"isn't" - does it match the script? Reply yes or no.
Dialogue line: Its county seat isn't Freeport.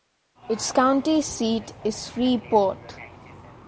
no